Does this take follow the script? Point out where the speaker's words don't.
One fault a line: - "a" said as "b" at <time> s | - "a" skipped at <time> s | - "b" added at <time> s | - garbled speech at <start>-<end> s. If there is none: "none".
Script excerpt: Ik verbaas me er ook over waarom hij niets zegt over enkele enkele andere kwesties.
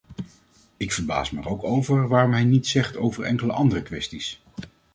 - "enkele" skipped at 3.5 s